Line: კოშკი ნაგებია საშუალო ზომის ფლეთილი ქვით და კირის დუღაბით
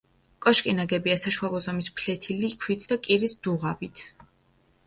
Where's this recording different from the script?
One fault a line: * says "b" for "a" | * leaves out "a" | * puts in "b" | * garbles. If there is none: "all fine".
all fine